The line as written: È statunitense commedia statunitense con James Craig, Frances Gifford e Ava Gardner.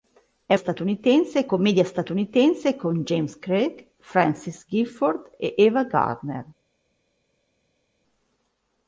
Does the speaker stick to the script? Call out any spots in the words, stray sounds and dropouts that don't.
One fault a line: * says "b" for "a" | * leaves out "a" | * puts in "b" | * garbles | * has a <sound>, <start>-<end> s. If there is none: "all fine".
all fine